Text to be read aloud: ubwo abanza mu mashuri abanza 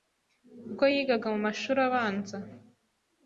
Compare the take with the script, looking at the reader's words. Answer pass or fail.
fail